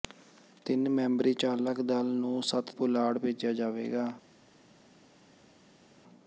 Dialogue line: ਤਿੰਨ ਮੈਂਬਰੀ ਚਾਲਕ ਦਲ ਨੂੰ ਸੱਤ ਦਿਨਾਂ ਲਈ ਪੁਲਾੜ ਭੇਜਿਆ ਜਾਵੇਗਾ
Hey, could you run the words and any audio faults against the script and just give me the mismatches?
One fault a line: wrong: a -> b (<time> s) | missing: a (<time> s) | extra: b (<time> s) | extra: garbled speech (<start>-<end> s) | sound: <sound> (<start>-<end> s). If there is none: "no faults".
missing: ਦਿਨਾਂ ਲਈ (2.8 s)